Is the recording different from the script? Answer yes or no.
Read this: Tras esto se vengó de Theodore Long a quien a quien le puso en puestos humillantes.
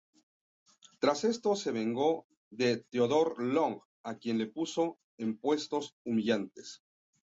yes